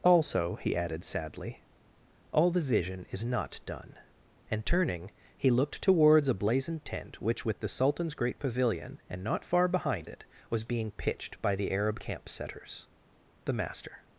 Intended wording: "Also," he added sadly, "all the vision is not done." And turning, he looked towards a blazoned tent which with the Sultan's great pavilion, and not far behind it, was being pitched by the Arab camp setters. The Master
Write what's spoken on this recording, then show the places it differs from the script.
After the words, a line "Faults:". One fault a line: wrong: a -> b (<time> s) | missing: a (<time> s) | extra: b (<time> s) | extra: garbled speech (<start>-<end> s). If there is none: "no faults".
"Also," he added sadly, "all the vision is not done." And turning, he looked towards a blazoned tent which with the Sultan's great pavilion, and not far behind it, was being pitched by the Arab camp setters. The Master
Faults:
no faults